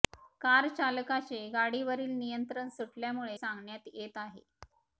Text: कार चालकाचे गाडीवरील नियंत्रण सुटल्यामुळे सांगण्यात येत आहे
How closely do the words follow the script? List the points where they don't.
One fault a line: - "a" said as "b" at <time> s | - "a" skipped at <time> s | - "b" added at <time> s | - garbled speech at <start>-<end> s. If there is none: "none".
none